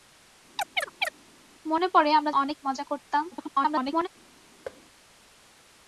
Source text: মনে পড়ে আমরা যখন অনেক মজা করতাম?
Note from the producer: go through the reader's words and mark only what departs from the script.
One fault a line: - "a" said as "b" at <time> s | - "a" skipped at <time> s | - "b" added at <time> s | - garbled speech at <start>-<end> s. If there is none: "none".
- "যখন" skipped at 2.3 s
- garbled speech at 3.3-4.1 s